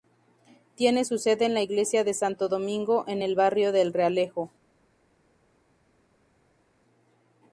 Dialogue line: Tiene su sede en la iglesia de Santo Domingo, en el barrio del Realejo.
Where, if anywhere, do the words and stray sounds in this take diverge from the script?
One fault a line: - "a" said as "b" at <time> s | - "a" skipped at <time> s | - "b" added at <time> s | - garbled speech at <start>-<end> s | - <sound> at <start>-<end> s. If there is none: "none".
none